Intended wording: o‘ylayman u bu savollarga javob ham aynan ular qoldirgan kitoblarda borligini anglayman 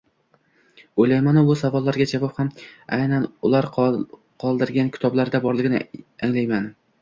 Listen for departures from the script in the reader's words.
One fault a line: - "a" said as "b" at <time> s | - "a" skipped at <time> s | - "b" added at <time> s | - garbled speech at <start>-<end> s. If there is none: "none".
none